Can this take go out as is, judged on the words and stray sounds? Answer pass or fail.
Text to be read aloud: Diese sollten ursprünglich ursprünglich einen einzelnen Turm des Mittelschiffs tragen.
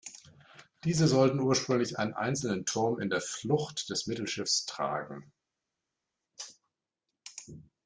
fail